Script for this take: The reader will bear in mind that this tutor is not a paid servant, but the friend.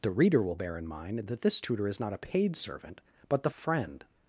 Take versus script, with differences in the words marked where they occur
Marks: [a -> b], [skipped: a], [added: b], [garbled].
The reader will bear in mind that this tutor is not a paid servant, but the friend.